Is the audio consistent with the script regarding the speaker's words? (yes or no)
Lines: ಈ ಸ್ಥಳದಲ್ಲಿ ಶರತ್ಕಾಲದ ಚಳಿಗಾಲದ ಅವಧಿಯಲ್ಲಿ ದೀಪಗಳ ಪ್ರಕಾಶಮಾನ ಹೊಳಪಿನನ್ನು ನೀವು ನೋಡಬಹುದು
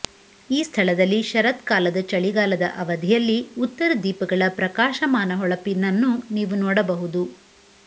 no